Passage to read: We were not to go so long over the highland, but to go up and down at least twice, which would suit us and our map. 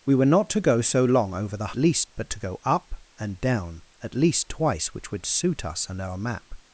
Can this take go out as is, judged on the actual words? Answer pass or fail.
fail